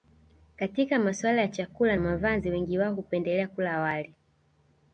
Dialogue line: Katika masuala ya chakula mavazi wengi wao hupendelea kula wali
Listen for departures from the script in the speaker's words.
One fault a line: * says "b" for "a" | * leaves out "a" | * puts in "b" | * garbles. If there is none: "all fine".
all fine